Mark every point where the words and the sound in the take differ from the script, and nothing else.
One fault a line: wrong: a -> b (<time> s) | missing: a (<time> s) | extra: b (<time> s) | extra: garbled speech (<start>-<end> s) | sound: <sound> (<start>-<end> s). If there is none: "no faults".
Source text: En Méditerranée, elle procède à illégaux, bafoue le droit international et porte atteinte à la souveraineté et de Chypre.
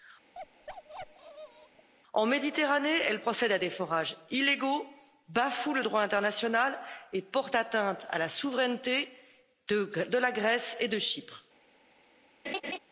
sound: bark (0.3-1.9 s)
extra: des forages (3.6 s)
extra: de la Grèce (9.7 s)
sound: laugh (12.4-12.8 s)